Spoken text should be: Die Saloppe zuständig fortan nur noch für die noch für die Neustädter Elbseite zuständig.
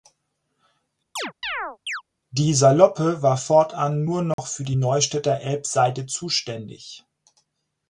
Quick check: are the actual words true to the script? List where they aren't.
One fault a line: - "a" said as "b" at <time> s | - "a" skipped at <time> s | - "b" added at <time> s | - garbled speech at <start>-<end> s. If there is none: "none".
- "zuständig" said as "war" at 3.2 s
- "noch für die" skipped at 4.8 s